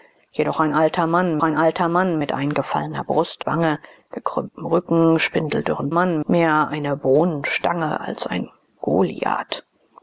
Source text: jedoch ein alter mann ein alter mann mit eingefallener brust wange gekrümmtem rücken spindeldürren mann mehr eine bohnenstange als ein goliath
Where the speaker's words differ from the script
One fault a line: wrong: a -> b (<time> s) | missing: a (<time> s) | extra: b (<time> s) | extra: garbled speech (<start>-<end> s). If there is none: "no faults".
no faults